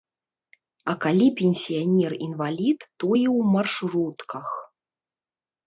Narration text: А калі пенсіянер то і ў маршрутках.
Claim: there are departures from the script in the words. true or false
true